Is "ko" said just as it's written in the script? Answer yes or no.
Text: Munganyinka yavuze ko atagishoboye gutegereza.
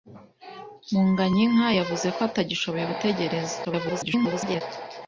yes